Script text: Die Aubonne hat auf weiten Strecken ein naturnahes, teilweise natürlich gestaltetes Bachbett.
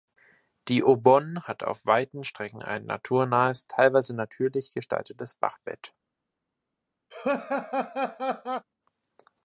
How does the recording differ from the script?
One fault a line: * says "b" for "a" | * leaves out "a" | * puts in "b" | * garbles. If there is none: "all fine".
all fine